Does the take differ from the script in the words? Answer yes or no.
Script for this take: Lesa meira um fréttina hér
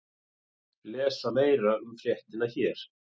no